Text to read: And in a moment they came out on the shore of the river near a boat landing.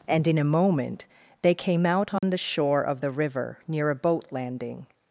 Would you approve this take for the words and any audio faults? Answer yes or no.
no